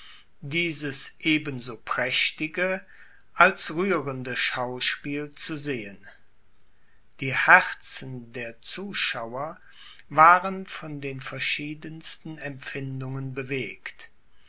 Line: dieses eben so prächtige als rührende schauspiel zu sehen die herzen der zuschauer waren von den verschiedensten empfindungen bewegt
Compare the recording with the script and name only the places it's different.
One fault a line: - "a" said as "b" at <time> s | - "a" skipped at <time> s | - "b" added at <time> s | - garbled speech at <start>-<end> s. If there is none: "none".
none